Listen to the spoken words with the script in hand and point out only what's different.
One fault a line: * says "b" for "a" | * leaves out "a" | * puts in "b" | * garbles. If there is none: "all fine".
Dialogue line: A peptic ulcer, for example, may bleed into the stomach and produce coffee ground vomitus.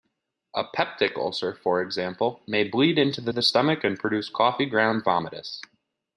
* puts in "the"